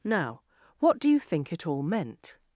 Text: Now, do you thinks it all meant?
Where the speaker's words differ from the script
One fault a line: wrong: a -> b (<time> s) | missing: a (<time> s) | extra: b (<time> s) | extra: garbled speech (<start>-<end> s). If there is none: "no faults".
extra: what (0.8 s)
wrong: thinks -> think (1.2 s)